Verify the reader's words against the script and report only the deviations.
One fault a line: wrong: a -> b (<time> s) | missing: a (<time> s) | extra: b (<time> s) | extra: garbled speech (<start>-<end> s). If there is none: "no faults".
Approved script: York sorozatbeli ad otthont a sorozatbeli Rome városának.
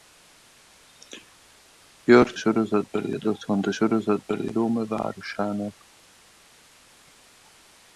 no faults